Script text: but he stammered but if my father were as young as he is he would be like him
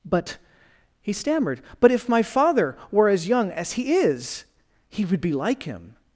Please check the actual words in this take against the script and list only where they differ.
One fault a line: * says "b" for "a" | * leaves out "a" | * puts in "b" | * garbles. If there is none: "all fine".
all fine